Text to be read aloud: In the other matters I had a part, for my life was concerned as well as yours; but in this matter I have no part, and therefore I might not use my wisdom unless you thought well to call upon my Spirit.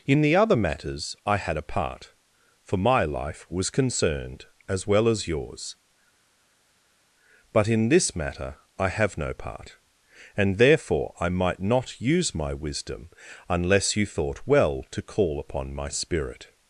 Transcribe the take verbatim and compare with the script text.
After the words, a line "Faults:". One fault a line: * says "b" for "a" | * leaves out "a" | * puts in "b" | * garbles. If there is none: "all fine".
In the other matters I had a part, for my life was concerned as well as yours; but in this matter I have no part, and therefore I might not use my wisdom unless you thought well to call upon my Spirit.
Faults:
all fine